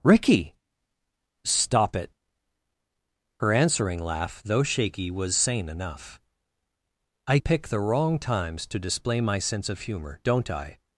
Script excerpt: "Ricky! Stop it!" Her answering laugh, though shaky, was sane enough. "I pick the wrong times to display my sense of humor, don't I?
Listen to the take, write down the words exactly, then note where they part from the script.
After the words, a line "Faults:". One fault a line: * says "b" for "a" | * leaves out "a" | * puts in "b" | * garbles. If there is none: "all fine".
"Ricky! Stop it!" Her answering laugh, though shaky, was sane enough. "I pick the wrong times to display my sense of humor, don't I?
Faults:
all fine